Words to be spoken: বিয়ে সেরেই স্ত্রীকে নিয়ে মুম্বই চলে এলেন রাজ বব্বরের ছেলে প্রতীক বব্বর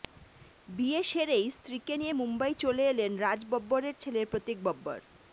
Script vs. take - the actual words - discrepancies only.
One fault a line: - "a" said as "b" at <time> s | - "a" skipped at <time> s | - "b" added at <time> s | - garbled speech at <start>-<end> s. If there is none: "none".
none